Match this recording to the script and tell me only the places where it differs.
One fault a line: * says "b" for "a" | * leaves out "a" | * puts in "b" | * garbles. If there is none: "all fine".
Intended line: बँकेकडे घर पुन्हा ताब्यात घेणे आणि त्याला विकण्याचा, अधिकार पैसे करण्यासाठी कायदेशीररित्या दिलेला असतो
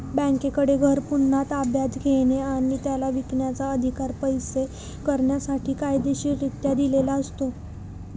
all fine